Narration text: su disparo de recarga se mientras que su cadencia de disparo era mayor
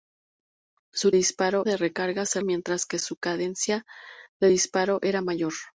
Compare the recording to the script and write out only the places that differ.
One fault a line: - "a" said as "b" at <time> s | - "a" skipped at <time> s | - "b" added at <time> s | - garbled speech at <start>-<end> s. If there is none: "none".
none